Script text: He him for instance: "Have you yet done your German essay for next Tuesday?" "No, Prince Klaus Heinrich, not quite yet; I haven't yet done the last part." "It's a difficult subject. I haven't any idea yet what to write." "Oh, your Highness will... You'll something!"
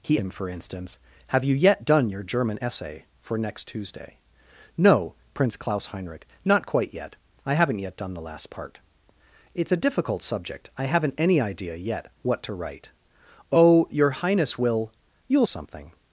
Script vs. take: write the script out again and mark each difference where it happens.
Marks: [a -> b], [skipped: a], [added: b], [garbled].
He him for instance: "Have you yet done your German essay for next Tuesday?" "No, Prince Klaus Heinrich, not quite yet; I haven't yet done the last part." "It's a difficult subject. I haven't any idea yet what to write." "Oh, your Highness will... You'll something!"